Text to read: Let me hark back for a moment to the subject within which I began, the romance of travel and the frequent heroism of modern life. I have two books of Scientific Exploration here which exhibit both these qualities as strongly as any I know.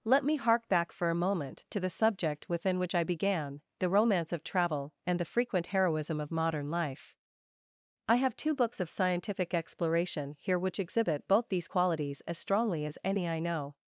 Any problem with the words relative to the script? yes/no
no